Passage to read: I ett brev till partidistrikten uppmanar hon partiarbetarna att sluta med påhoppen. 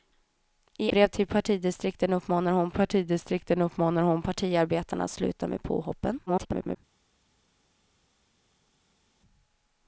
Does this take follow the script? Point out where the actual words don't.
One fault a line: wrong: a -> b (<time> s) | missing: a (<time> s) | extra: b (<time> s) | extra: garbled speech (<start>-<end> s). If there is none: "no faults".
missing: ett (0.9 s)
extra: partidistrikten uppmanar hon (2.7 s)
extra: garbled speech (6.3-6.8 s)